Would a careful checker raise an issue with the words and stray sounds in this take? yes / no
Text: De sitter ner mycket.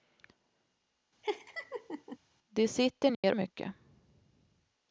yes